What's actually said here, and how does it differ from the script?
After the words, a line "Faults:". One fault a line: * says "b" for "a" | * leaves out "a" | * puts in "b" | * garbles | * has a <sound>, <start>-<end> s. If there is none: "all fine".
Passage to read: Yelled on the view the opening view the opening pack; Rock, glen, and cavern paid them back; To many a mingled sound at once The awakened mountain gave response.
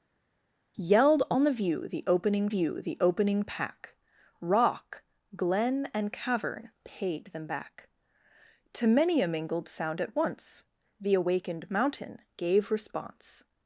Yelled on the view the opening view the opening pack; Rock, glen, and cavern paid them back; To many a mingled sound at once The awakened mountain gave response.
Faults:
all fine